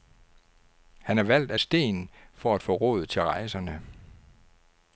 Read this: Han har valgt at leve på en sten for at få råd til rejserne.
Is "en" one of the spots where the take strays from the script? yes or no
yes